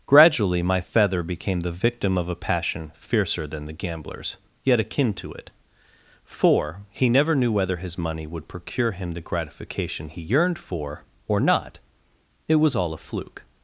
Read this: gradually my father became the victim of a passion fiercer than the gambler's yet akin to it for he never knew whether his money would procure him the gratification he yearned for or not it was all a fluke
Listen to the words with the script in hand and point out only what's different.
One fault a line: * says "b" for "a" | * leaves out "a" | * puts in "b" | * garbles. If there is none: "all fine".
* says "feather" for "father"